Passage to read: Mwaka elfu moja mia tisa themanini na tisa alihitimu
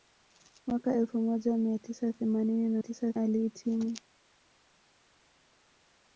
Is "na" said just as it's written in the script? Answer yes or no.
yes